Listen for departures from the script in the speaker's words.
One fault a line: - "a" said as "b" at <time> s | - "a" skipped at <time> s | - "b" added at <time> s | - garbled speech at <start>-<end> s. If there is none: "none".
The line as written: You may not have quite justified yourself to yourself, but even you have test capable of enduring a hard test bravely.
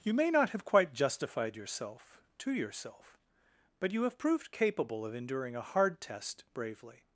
- "even" skipped at 3.9 s
- "test" said as "proved" at 4.2 s